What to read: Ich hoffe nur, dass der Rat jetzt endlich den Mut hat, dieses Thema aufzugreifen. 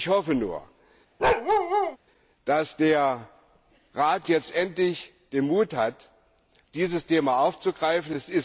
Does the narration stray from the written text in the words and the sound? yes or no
yes